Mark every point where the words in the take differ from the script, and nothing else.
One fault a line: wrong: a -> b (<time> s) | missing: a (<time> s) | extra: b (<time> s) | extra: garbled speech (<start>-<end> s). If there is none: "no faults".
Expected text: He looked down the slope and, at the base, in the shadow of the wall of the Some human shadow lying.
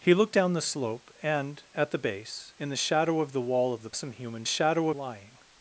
no faults